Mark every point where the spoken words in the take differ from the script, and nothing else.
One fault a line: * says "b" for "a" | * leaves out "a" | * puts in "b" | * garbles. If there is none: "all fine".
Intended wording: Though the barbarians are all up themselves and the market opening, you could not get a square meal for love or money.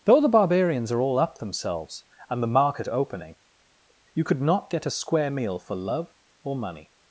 all fine